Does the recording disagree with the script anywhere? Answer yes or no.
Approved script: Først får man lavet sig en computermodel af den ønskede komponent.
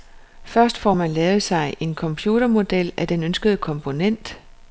no